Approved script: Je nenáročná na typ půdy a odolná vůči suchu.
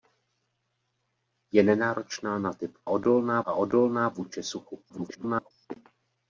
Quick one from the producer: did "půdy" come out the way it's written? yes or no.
no